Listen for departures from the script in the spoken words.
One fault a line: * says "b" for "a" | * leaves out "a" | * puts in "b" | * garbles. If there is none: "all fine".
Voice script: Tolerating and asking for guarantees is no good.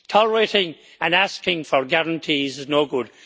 all fine